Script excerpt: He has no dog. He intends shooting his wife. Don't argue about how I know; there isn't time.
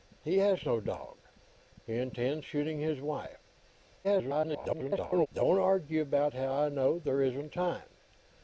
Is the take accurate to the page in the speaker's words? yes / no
no